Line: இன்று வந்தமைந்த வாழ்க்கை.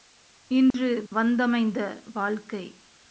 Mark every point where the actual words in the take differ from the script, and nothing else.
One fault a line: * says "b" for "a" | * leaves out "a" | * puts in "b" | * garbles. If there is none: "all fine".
all fine